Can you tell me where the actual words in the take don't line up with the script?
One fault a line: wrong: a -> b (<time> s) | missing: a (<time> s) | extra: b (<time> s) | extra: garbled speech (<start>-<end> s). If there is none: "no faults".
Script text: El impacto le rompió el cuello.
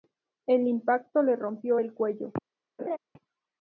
no faults